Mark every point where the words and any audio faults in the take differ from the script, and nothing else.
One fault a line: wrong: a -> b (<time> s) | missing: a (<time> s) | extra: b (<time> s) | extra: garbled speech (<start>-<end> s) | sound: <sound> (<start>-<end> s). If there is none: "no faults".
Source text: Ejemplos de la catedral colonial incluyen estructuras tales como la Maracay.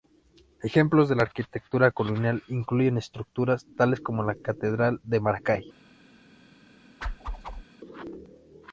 wrong: catedral -> arquitectura (1.2 s)
extra: catedral de (4.3 s)
sound: whoosh (7.0-7.6 s)